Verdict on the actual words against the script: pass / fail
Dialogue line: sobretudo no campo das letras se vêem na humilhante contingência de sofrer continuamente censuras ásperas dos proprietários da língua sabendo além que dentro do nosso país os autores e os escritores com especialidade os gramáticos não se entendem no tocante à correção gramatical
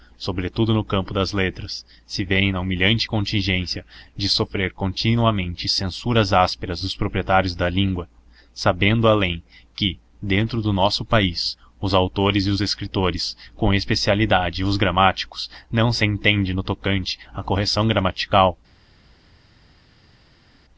pass